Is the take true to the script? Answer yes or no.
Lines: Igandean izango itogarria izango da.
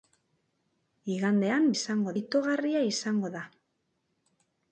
yes